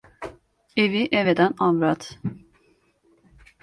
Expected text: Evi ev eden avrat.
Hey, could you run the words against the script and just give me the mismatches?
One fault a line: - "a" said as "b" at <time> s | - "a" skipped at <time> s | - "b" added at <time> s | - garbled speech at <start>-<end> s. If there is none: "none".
none